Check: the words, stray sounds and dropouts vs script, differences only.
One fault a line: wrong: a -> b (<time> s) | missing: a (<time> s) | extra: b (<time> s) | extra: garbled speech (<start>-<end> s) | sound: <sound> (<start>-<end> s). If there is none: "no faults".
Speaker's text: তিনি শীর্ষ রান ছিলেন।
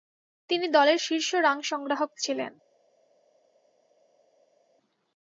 extra: দলের (0.7 s)
extra: সংগ্রাহক (1.6 s)